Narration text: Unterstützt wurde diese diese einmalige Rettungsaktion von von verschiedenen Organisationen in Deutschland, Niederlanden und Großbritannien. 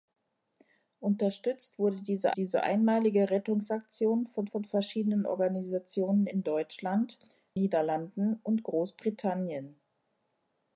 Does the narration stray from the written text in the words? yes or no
no